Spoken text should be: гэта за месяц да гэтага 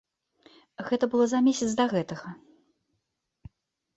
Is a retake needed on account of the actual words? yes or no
yes